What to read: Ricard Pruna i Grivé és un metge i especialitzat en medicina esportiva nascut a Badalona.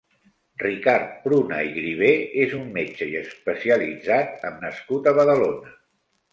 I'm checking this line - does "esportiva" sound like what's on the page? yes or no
no